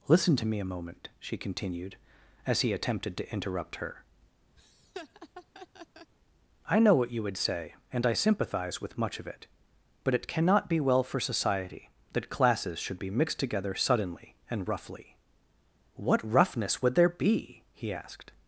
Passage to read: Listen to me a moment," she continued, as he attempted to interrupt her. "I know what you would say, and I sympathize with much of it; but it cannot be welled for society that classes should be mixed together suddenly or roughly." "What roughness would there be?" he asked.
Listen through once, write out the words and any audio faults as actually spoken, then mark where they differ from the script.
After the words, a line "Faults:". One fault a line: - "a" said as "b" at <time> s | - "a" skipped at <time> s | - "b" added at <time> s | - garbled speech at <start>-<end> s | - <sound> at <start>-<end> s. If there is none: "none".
Listen to me a moment," she continued, as he attempted to interrupt her. "I know what you would say, and I sympathize with much of it; but it cannot be well for society that classes should be mixed together suddenly and roughly." "What roughness would there be?" he asked.
Faults:
- laugh at 4.6-6.1 s
- "welled" said as "well" at 10.8 s
- "or" said as "and" at 14.5 s